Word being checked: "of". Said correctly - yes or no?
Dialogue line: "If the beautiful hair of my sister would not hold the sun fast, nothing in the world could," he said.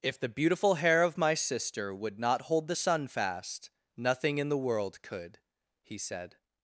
yes